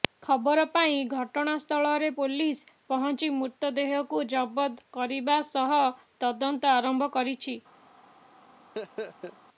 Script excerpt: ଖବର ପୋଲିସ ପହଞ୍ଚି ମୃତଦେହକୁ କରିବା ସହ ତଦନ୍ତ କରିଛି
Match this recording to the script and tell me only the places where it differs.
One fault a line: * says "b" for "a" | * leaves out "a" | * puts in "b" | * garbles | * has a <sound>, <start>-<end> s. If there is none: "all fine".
* puts in "ପାଇ ଘଟଣାସ୍ଥଳରେ"
* puts in "ଜବତ"
* puts in "ଆରମ୍ଭ"
* has a laugh, 8.7-9.4 s